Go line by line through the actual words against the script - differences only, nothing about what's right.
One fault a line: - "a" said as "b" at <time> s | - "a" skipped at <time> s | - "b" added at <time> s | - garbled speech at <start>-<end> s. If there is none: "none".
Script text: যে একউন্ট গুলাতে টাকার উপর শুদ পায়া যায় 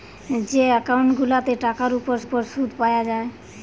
- "উপর" added at 2.2 s